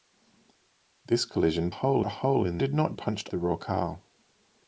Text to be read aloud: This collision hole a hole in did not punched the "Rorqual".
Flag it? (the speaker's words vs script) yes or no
no